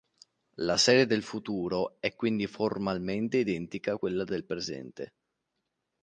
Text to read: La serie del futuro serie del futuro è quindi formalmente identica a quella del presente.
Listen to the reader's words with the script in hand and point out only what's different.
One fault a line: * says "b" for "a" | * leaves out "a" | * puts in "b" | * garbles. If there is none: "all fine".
* leaves out "serie del futuro"